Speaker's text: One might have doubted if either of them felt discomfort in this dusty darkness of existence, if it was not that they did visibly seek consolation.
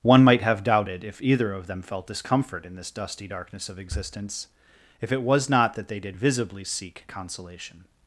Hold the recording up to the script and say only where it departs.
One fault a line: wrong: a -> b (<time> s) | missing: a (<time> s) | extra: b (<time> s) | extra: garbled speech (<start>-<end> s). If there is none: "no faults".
no faults